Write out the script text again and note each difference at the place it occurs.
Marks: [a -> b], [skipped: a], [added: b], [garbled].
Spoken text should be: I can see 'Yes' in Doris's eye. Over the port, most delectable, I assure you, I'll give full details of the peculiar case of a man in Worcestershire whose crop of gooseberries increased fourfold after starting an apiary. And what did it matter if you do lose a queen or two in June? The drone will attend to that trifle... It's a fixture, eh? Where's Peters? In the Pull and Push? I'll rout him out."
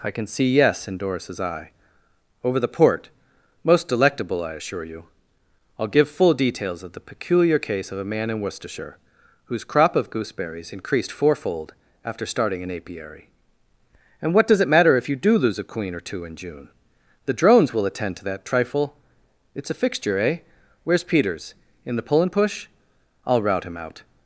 I can see 'Yes' in Doris's eye. Over the port, most delectable, I assure you, I'll give full details of the peculiar case of a man in Worcestershire whose crop of gooseberries increased fourfold after starting an apiary. And what [did -> does] it matter if you do lose a queen or two in June? The [drone -> drones] will attend to that trifle... It's a fixture, eh? Where's Peters? In the Pull and Push? I'll rout him out."